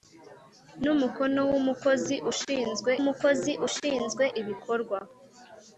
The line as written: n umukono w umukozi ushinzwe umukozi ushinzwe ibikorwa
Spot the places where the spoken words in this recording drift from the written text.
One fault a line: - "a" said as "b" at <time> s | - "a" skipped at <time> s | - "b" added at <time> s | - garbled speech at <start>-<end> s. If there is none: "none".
none